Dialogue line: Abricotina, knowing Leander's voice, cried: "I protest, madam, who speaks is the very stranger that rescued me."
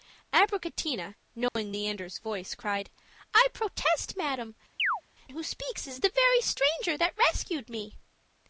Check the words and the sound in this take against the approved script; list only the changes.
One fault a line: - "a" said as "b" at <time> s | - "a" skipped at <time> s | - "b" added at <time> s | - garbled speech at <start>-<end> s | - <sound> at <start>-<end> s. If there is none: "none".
- dropout at 1.5-1.6 s
- chirp at 4.8-5.0 s